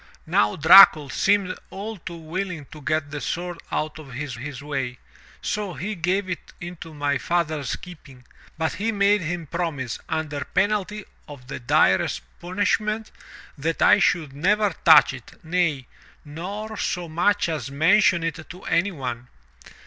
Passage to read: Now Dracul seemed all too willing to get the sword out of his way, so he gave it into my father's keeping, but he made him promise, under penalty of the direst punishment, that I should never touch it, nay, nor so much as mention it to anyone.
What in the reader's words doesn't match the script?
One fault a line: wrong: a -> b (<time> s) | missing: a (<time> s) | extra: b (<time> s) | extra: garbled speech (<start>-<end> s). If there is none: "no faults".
extra: his (4.4 s)